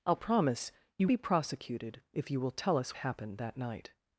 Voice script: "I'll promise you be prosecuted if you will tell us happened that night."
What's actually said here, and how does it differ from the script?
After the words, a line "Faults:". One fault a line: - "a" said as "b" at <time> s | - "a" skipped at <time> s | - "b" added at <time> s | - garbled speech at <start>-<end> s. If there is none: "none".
"I'll promise you be prosecuted if you will tell us happened that night."
Faults:
none